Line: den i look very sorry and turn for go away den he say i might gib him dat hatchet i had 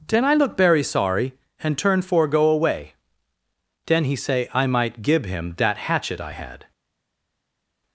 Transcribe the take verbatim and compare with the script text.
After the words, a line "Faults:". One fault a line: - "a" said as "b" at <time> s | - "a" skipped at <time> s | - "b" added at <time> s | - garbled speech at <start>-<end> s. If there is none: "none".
den i look very sorry and turn for go away den he say i might gib him dat hatchet i had
Faults:
none